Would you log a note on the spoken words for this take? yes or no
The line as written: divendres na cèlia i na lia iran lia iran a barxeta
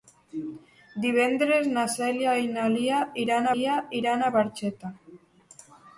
no